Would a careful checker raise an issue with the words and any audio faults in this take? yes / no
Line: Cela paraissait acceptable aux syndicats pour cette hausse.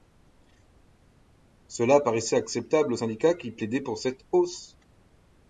yes